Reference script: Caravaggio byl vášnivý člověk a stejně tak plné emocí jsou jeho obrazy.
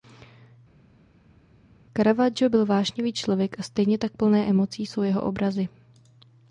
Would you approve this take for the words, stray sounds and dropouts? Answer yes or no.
yes